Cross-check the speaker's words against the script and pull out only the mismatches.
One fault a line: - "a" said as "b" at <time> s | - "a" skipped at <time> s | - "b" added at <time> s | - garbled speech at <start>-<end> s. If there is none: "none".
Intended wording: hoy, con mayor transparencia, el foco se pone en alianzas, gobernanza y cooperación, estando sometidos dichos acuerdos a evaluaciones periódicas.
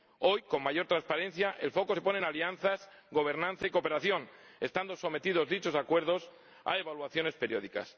none